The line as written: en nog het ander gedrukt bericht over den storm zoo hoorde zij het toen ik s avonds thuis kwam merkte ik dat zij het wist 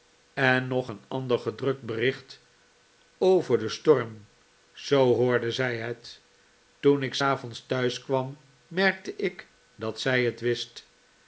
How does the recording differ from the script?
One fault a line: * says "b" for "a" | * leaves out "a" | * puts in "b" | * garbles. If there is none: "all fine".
* says "een" for "het"